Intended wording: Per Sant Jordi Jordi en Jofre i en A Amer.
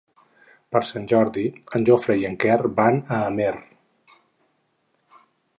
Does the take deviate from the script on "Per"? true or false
false